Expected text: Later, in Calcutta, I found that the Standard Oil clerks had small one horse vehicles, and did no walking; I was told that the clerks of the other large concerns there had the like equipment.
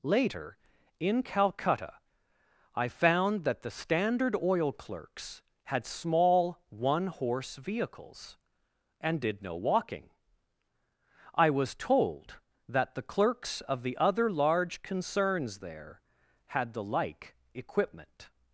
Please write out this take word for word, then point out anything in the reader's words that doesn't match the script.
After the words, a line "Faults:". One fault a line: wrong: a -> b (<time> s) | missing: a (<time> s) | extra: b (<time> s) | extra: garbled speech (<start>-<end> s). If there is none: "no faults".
Later, in Calcutta, I found that the Standard Oil clerks had small one horse vehicles, and did no walking; I was told that the clerks of the other large concerns there had the like equipment.
Faults:
no faults